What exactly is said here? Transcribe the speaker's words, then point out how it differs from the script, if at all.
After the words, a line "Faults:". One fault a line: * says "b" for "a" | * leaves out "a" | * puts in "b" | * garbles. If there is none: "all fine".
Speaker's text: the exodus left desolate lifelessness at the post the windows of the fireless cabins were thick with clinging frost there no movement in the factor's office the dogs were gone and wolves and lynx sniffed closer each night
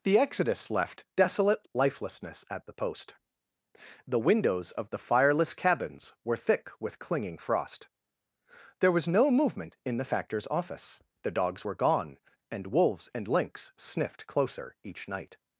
the exodus left desolate lifelessness at the post the windows of the fireless cabins were thick with clinging frost there was no movement in the factor's office the dogs were gone and wolves and lynx sniffed closer each night
Faults:
* puts in "was"